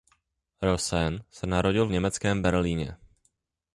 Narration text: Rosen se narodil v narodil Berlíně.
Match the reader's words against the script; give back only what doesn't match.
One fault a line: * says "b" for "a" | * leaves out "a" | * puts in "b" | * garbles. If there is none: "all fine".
* says "německém" for "narodil"